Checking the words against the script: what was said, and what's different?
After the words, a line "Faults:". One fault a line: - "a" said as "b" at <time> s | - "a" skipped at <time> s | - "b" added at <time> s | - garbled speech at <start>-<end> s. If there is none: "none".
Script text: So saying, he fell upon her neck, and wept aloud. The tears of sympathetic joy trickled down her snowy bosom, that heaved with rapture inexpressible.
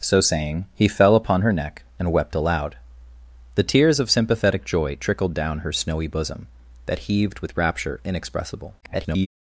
So saying, he fell upon her neck, and wept aloud. The tears of sympathetic joy trickled down her snowy bosom, that heaved with rapture inexpressible. [garbled]
Faults:
- garbled speech at 8.8-9.3 s